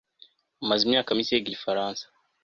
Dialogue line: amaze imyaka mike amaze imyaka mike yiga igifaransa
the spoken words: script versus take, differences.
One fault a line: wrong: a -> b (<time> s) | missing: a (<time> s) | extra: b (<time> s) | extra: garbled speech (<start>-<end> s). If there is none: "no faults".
missing: amaze imyaka mike (1.3 s)